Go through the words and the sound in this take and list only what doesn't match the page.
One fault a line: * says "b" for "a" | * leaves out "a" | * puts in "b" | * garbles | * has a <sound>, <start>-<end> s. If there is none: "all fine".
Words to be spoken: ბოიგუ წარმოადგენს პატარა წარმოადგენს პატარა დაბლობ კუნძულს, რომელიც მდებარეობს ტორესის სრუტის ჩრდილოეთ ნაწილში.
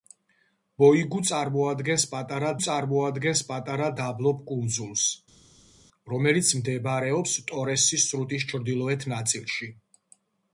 all fine